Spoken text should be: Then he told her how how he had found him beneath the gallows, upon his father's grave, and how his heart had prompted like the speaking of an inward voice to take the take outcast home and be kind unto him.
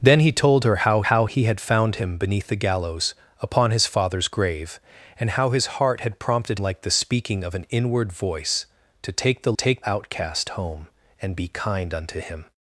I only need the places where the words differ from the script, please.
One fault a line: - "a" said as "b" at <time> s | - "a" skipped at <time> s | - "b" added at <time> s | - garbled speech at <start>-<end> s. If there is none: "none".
none